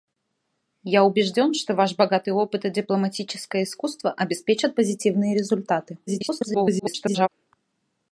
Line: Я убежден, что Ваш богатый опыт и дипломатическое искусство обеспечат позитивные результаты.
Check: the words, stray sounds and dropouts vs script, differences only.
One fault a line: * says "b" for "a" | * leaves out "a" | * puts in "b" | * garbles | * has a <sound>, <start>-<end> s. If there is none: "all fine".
* garbles